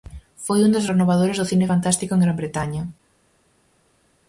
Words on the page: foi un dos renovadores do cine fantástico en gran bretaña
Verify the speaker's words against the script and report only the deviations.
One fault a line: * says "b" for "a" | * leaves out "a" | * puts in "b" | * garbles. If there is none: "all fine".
all fine